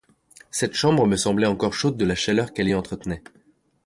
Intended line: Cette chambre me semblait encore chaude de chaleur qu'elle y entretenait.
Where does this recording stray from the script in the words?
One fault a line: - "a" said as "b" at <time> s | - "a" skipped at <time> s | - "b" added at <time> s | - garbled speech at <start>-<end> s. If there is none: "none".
- "la" added at 2.0 s